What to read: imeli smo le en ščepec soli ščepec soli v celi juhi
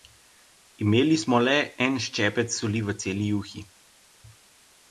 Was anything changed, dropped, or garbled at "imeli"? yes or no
no